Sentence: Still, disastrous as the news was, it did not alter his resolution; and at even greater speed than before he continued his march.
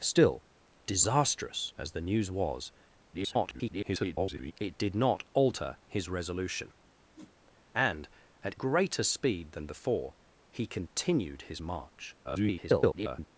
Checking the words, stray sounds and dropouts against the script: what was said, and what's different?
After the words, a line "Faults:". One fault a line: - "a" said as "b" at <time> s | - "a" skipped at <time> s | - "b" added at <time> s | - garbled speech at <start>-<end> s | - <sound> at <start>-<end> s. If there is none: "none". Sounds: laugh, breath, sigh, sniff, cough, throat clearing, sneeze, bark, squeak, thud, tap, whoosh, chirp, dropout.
Still, disastrous as the news was, [garbled] it did not alter his resolution; and at greater speed than before he continued his march. [garbled]
Faults:
- garbled speech at 3.1-4.5 s
- whoosh at 7.2-7.4 s
- "even" skipped at 8.6 s
- garbled speech at 12.2-13.3 s